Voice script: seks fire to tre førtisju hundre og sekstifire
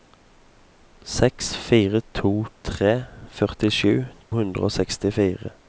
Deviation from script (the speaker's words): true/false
false